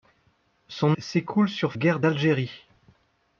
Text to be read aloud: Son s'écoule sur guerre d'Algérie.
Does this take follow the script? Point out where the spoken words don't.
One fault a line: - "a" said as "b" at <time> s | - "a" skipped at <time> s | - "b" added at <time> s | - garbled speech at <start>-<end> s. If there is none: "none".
none